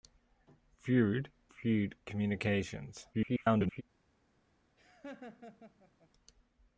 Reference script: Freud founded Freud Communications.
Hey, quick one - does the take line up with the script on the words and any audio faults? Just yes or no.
no